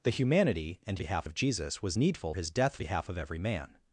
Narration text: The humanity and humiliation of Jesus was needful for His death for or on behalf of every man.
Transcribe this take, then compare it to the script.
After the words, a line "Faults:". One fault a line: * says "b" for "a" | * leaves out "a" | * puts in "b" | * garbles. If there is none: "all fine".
The humanity and behalf of Jesus was needful His death behalf of every man.
Faults:
* says "behalf" for "humiliation"
* leaves out "for"
* leaves out "for or on"